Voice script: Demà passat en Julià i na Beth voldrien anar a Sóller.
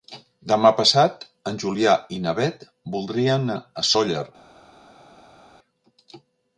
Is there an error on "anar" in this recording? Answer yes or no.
yes